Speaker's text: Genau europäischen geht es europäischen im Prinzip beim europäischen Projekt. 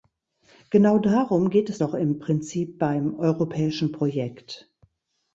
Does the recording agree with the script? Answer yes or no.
no